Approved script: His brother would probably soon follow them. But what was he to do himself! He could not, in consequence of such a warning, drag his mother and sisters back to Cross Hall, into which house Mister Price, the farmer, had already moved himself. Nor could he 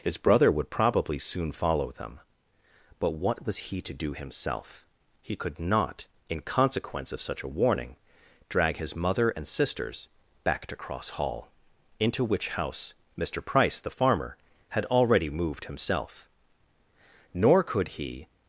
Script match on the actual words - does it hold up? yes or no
yes